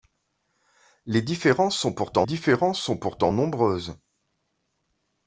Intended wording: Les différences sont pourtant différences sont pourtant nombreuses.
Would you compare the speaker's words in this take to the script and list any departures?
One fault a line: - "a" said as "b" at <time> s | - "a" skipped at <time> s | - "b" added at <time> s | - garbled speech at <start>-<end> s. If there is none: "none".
none